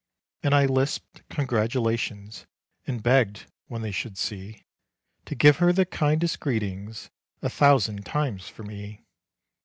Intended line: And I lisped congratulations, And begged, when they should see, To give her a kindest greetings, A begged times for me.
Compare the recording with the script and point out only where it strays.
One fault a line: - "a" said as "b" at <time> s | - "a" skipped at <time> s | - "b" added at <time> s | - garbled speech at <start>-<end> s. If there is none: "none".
- "a" said as "the" at 5.7 s
- "begged" said as "thousand" at 7.5 s